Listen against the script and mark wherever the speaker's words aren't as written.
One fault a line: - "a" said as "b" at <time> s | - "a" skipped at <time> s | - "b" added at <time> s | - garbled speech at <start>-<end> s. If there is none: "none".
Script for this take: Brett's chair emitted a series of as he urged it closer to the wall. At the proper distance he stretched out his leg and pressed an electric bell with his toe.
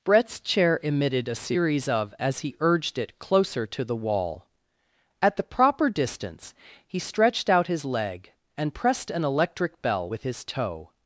none